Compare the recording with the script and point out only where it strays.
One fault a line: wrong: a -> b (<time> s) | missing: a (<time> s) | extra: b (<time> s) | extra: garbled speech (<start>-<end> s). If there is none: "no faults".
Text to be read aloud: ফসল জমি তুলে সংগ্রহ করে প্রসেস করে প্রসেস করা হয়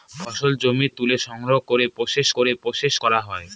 no faults